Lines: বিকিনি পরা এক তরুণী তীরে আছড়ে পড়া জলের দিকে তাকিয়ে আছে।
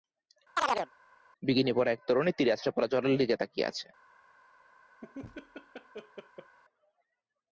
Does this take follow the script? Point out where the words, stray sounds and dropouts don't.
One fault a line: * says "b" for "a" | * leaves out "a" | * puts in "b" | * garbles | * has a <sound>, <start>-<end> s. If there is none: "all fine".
* has a chirp, 0.6-0.9 s
* has a laugh, 5.0-6.6 s